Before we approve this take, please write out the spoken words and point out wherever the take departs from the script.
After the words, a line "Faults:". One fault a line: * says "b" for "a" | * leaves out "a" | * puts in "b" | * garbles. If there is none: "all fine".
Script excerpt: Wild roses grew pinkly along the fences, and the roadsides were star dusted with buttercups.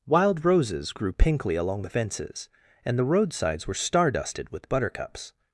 Wild roses grew pinkly along the fences, and the roadsides were star dusted with buttercups.
Faults:
all fine